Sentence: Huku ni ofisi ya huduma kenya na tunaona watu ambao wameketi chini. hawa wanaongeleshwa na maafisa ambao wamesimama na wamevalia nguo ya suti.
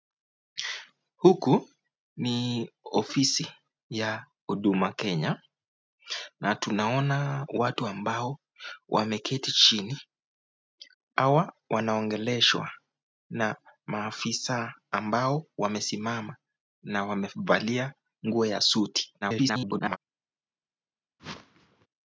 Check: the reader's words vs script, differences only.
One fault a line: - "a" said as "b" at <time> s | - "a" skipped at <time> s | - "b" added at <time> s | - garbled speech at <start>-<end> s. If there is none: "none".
- garbled speech at 19.2-20.0 s